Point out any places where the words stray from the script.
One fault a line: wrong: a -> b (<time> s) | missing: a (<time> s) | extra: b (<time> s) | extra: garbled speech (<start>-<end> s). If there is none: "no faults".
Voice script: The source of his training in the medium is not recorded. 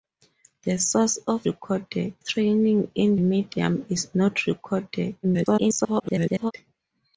wrong: his -> recorded (1.5 s)
missing: the (3.2 s)
extra: garbled speech (5.2-6.5 s)